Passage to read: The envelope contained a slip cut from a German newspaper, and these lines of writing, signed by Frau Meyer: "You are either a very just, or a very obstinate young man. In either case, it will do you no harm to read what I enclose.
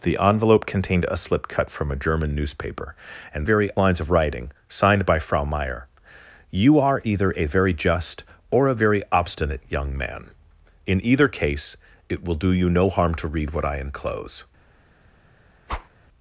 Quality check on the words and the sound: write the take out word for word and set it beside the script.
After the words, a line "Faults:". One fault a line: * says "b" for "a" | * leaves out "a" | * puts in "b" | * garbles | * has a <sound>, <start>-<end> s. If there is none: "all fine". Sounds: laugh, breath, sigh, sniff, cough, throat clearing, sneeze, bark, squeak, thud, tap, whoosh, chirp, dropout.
The envelope contained a slip cut from a German newspaper, and very lines of writing, signed by Frau Meyer: "You are either a very just, or a very obstinate young man. In either case, it will do you no harm to read what I enclose.
Faults:
* says "very" for "these"
* has a whoosh, 15.7-15.9 s